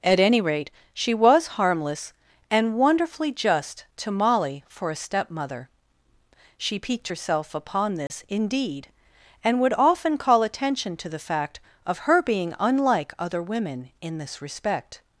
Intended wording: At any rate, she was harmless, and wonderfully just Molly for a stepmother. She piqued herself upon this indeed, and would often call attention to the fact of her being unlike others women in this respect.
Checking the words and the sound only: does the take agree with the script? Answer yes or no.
no